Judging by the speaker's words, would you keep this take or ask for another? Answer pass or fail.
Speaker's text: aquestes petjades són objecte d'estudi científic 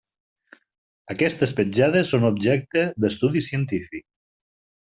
pass